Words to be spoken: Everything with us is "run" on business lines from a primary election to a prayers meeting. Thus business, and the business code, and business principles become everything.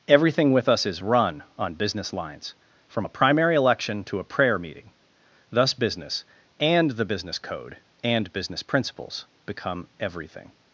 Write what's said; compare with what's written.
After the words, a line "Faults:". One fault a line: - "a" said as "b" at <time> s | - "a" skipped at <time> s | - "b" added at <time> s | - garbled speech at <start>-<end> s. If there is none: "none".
Everything with us is "run" on business lines from a primary election to a prayer meeting. Thus business, and the business code, and business principles become everything.
Faults:
- "prayers" said as "prayer" at 4.2 s